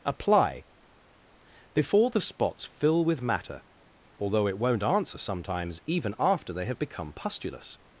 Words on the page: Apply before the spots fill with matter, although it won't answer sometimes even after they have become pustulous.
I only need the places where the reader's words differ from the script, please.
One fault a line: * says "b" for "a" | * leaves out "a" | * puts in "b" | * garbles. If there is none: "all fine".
all fine